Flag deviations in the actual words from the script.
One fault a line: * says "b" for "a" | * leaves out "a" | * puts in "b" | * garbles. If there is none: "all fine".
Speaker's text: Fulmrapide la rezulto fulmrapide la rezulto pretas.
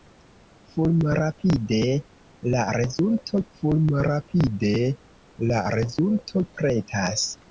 all fine